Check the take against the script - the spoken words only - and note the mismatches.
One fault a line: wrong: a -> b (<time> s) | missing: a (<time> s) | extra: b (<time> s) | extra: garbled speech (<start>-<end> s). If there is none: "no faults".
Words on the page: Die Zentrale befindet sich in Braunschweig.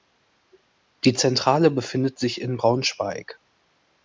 no faults